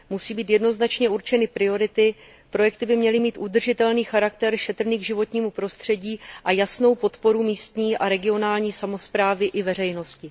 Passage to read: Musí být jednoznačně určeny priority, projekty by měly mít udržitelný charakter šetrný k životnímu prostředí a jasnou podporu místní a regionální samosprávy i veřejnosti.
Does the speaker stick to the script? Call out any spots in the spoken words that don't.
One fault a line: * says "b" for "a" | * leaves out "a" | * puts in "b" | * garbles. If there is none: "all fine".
all fine